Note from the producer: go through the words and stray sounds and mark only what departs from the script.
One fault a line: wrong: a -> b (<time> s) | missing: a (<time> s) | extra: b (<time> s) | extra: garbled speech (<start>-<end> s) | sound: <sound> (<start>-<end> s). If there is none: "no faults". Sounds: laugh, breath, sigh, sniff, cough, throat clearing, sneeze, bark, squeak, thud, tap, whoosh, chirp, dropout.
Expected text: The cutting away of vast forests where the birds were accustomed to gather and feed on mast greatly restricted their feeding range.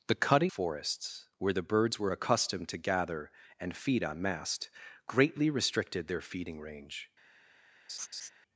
missing: away of vast (0.5 s)
sound: laugh (7.9-8.3 s)